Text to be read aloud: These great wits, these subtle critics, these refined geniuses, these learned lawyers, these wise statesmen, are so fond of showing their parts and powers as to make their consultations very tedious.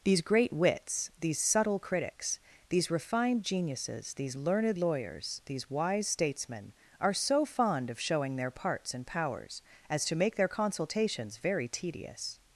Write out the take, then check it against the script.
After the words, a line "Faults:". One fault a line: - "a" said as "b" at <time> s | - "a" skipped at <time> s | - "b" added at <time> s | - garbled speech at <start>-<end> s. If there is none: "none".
These great wits, these subtle critics, these refined geniuses, these learned lawyers, these wise statesmen, are so fond of showing their parts and powers as to make their consultations very tedious.
Faults:
none